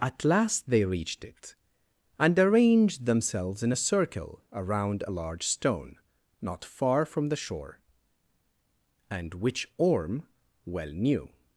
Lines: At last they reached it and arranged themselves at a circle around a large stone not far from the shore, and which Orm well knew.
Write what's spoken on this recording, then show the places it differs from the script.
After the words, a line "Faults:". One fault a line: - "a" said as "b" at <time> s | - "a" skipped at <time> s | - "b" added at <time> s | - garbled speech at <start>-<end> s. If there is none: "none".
At last they reached it and arranged themselves in a circle around a large stone not far from the shore, and which Orm well knew.
Faults:
- "at" said as "in" at 3.6 s